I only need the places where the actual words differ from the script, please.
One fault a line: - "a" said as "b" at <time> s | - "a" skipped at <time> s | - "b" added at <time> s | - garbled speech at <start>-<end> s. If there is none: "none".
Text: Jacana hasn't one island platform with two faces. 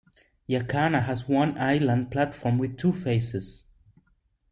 - "hasn't" said as "has" at 1.0 s